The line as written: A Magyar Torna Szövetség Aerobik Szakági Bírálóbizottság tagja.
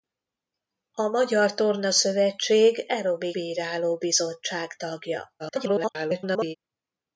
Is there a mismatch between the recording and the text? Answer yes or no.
yes